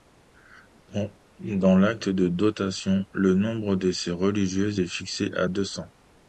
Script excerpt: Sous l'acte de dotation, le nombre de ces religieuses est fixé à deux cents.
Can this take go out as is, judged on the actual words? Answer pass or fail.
fail